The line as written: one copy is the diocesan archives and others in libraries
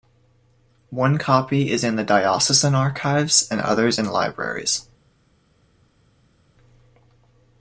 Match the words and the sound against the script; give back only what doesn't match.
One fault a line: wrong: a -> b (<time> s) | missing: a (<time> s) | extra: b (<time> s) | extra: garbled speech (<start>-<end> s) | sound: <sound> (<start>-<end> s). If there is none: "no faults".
extra: in (1.8 s)